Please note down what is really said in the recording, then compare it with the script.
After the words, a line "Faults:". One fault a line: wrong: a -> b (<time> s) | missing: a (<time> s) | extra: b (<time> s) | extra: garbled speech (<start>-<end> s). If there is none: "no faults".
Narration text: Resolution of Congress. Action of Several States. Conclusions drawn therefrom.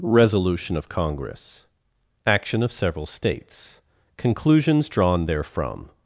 Resolution of Congress. Action of Several States. Conclusions drawn therefrom.
Faults:
no faults